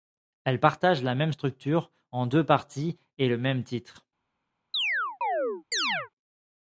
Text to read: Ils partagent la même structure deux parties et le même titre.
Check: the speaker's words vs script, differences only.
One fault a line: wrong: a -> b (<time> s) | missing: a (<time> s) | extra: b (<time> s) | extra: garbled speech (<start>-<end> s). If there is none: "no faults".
wrong: Ils -> Elles (0.5 s)
extra: en (2.1 s)